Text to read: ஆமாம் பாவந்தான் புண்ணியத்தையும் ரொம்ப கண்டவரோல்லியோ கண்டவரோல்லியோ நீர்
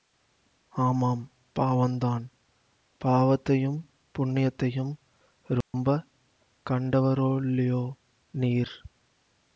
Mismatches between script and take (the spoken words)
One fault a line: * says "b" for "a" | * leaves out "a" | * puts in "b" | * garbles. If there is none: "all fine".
* puts in "பாவத்தையும்"
* leaves out "கண்டவரோல்லியோ"